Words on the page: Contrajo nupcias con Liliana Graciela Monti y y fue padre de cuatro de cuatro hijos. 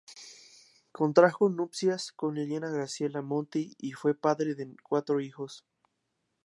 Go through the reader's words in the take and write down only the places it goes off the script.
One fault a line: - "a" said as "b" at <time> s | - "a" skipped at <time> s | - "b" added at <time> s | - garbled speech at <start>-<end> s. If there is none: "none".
- "y" skipped at 3.9 s
- "de cuatro" skipped at 5.2 s